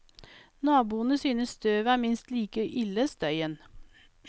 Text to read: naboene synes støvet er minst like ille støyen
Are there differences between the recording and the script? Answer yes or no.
no